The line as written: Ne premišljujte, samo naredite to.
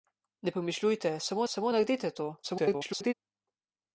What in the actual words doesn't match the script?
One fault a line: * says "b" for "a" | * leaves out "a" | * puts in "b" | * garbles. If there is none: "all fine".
* puts in "samo"
* garbles